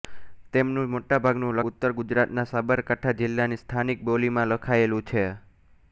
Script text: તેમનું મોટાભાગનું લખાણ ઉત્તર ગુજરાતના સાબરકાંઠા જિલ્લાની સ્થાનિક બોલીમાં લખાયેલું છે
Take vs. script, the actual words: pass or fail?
fail